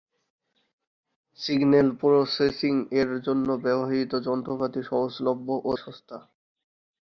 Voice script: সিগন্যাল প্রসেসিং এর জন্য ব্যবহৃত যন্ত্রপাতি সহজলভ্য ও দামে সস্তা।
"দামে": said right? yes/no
no